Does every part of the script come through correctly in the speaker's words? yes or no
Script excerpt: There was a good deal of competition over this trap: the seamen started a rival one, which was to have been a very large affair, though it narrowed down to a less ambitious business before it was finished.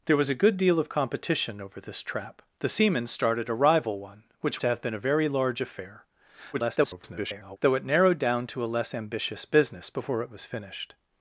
no